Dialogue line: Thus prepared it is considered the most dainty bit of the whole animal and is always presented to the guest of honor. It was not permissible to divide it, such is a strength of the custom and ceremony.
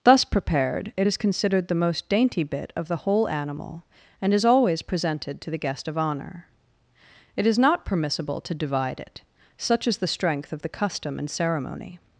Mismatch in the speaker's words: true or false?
true